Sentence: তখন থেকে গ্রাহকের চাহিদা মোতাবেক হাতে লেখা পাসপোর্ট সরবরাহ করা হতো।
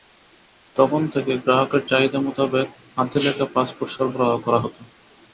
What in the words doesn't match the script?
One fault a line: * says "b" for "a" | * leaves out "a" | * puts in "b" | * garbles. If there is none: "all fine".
all fine